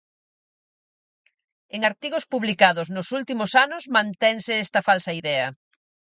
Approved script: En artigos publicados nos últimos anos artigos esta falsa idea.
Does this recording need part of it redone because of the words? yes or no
yes